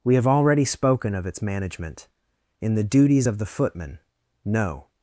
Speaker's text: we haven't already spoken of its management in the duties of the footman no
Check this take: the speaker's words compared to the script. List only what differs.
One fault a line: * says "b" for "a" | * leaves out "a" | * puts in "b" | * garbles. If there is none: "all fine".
* says "have" for "haven't"